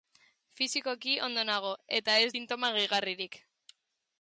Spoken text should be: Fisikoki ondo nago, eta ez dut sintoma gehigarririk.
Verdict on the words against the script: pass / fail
fail